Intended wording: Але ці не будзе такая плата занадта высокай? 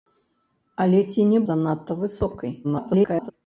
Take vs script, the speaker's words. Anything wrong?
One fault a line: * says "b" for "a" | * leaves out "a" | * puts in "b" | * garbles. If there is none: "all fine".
* leaves out "будзе такая плата"
* garbles